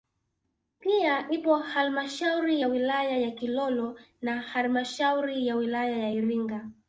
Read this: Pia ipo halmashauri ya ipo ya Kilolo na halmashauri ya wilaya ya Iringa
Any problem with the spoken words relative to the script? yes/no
yes